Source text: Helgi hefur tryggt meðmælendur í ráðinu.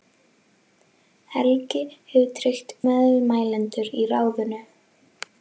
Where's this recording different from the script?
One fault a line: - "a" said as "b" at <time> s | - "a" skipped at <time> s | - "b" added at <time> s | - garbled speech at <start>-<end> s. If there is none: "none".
none